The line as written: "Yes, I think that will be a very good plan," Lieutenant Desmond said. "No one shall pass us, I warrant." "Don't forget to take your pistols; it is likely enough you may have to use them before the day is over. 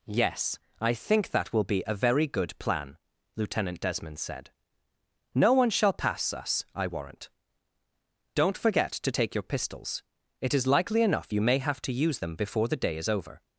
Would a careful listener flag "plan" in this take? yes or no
no